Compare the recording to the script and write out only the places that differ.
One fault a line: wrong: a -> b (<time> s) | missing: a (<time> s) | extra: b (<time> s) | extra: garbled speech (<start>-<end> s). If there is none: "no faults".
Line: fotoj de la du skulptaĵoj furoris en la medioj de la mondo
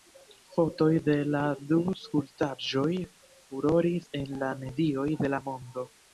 no faults